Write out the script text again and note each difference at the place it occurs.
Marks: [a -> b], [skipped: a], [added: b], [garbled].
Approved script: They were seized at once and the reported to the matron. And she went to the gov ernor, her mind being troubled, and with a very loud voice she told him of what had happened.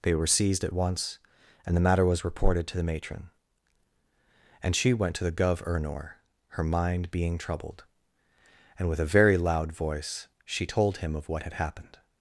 They were seized at once and the [added: matter was] reported to the matron. And she went to the gov ernor, her mind being troubled, and with a very loud voice she told him of what had happened.